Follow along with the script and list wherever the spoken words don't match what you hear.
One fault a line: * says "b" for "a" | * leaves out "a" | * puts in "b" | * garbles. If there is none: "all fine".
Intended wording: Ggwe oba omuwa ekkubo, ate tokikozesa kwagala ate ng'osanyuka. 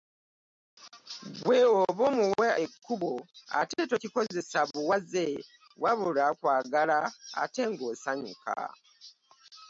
* puts in "buwaze wabula"